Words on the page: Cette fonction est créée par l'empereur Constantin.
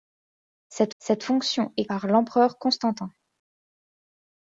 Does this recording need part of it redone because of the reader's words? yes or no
yes